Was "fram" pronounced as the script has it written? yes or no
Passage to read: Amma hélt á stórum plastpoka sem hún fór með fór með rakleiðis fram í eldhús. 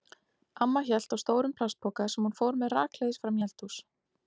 yes